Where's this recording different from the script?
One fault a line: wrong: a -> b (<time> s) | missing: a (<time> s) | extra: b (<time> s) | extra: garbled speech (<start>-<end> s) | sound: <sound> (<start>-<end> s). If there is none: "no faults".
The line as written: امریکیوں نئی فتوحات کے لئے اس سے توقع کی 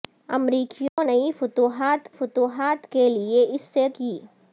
sound: dropout (0.9-1.0 s)
extra: فتوحات (2.2 s)
missing: توقع (3.9 s)